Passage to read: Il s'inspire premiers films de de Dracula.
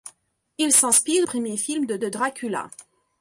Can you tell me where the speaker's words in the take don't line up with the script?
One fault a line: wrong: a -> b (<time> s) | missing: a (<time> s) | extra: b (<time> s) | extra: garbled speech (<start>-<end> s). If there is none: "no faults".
no faults